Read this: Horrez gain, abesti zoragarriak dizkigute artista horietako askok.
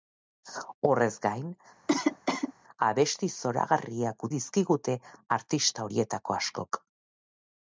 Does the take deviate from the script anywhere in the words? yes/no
no